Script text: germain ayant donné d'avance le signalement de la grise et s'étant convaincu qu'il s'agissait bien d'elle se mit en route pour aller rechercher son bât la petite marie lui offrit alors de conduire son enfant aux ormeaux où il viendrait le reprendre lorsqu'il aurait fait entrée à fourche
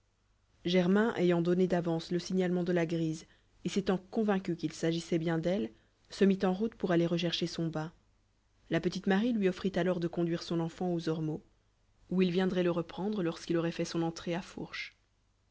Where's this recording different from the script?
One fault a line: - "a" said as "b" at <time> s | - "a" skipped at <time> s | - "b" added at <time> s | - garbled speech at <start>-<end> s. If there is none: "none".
- "son" added at 13.8 s